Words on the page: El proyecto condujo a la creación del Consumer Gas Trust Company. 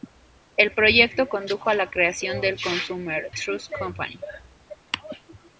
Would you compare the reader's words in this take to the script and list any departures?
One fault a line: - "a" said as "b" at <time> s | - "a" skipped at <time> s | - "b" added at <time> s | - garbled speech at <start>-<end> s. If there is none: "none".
- "Gas" skipped at 3.3 s